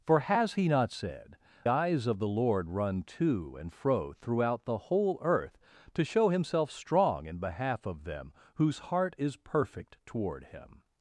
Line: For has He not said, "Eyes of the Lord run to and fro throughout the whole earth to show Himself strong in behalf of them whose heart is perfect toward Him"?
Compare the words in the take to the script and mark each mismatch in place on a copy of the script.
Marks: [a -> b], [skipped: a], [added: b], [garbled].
For has He not said, "Eyes of the Lord run to and fro throughout the whole earth to show Himself strong in behalf of them whose heart is perfect toward Him"?